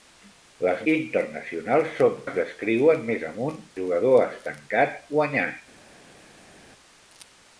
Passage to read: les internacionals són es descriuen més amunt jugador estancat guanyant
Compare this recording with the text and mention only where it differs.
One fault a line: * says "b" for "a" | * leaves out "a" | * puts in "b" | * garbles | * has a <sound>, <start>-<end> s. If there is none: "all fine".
all fine